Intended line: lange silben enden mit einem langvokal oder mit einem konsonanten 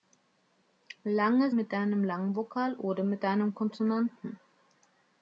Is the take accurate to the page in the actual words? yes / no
no